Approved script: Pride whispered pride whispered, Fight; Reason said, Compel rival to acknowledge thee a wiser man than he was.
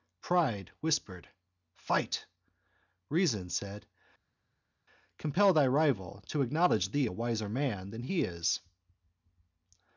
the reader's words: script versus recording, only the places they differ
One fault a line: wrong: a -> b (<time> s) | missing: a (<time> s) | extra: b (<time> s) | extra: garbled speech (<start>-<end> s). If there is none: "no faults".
missing: pride whispered (1.3 s)
extra: thy (5.5 s)
wrong: was -> is (8.2 s)